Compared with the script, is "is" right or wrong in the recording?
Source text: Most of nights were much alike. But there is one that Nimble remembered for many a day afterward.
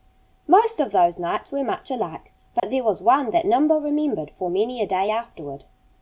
wrong